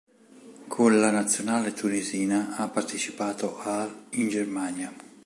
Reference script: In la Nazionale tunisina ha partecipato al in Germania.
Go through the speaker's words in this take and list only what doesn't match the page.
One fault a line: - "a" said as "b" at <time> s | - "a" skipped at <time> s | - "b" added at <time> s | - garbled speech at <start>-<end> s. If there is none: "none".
- "In" said as "Con" at 0.7 s